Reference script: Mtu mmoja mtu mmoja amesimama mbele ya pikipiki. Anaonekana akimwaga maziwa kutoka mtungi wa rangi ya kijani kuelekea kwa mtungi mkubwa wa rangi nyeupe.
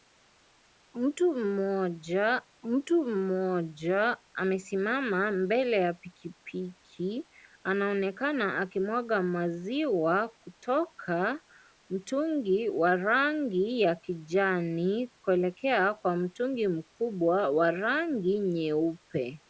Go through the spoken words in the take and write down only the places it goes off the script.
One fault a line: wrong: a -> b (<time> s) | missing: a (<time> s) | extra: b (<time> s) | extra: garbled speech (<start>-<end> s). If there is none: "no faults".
no faults